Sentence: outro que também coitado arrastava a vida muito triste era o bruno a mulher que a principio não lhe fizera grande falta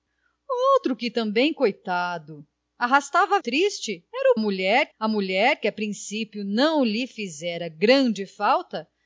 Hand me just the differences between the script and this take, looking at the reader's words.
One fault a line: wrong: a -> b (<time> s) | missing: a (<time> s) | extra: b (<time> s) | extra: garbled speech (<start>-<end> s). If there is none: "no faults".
missing: vida muito (3.4 s)
wrong: bruno -> mulher (4.4 s)